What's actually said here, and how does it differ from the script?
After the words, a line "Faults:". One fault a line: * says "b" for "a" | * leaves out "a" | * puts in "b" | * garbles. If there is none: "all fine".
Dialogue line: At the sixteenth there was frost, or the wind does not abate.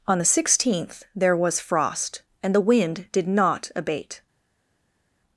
On the sixteenth there was frost, and the wind did not abate.
Faults:
* says "On" for "At"
* says "and" for "or"
* says "did" for "does"